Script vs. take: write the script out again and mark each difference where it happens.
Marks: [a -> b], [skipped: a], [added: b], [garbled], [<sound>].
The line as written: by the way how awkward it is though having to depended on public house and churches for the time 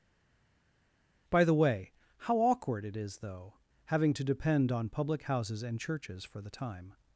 by the way how awkward it is though having to [depended -> depend] on public [house -> houses] and churches for the time